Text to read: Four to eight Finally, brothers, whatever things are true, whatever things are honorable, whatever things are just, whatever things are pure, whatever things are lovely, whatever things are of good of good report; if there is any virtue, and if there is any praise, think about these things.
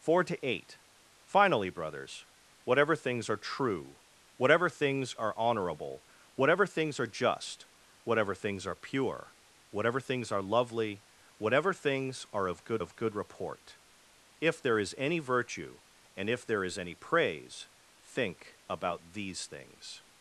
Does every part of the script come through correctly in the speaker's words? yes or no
yes